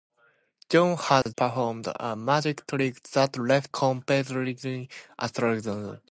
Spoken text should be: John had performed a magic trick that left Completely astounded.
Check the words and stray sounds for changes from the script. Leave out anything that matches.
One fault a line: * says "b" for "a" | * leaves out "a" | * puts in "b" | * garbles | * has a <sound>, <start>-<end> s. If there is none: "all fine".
* has a dropout, 1.2-1.3 s